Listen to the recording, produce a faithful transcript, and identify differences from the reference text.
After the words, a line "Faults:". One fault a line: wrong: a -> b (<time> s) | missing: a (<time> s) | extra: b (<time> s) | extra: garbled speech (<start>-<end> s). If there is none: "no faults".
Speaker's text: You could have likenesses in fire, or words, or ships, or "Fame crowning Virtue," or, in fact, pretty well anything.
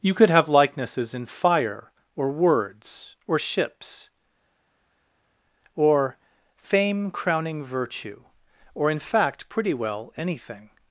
You could have likenesses in fire, or words, or ships, or "Fame crowning Virtue," or, in fact, pretty well anything.
Faults:
no faults